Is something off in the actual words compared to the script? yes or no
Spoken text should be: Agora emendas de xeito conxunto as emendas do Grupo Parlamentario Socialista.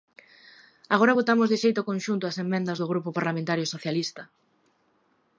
yes